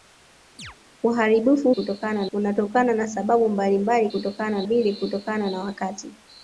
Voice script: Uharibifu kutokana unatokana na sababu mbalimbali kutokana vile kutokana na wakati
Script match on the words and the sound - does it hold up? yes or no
no